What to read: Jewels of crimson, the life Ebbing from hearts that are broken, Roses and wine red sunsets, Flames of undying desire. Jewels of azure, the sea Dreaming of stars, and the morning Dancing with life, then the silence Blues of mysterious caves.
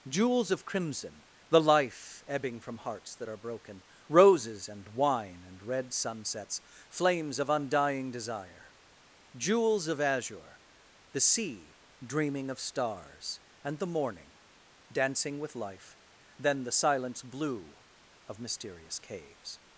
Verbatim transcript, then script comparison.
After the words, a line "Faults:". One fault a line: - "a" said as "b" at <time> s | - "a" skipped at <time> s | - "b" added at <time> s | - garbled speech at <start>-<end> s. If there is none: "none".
Jewels of crimson, the life Ebbing from hearts that are broken, Roses and wine and red sunsets, Flames of undying desire. Jewels of azure, the sea Dreaming of stars, and the morning Dancing with life, then the silence Blue of mysterious caves.
Faults:
- "and" added at 5.4 s
- "Blues" said as "Blue" at 17.2 s